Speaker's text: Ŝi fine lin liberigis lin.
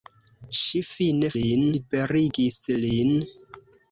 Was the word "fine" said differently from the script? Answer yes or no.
no